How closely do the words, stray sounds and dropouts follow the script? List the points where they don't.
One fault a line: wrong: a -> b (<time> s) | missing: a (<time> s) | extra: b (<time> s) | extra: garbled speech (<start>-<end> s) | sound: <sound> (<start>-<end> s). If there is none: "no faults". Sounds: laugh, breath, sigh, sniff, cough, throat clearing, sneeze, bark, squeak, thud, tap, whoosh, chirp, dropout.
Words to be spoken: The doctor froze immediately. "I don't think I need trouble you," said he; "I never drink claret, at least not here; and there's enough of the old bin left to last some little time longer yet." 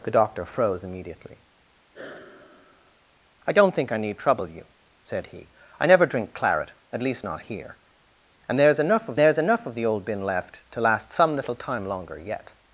sound: sigh (1.9-3.0 s)
extra: there's enough of (9.2 s)